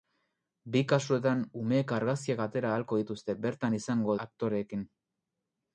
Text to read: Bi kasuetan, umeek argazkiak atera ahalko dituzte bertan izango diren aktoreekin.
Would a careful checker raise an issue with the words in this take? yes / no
yes